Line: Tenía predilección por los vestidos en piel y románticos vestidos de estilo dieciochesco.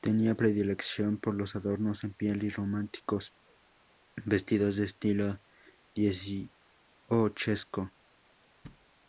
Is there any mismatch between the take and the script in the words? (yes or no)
yes